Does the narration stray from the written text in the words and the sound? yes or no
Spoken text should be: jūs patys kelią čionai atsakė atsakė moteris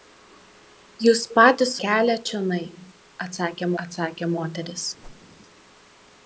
yes